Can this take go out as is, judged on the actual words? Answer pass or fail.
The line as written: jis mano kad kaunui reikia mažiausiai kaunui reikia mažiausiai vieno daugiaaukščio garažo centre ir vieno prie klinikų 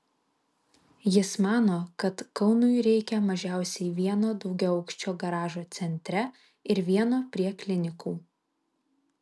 fail